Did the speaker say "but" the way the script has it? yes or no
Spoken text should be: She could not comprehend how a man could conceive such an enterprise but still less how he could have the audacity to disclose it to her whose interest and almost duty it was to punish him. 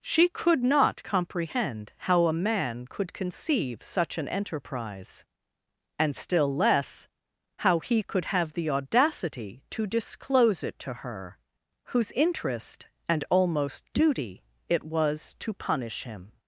no